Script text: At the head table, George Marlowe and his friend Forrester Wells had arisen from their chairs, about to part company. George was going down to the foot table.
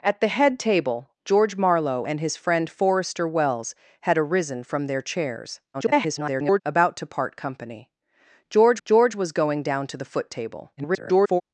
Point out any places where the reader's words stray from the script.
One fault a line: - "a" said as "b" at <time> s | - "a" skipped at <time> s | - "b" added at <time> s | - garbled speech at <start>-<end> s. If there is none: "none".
- garbled speech at 5.7-6.6 s
- "george" added at 8.9 s
- garbled speech at 10.8-11.4 s